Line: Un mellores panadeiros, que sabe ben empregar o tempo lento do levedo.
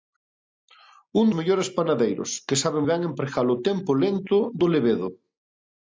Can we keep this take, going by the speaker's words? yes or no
yes